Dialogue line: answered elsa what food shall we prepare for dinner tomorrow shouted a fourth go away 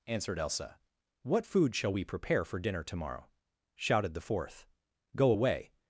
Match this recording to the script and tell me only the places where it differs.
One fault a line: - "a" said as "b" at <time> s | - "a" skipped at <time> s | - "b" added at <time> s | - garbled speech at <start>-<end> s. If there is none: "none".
- "a" said as "the" at 4.1 s